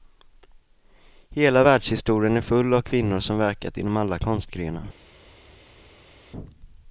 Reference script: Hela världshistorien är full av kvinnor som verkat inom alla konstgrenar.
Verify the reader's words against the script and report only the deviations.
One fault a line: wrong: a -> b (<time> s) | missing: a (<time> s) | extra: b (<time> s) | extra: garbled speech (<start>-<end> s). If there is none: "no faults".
no faults